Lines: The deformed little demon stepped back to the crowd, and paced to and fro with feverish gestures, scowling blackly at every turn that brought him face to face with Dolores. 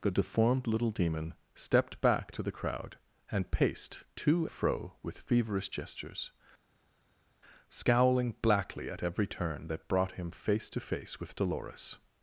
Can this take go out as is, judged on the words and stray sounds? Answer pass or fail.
fail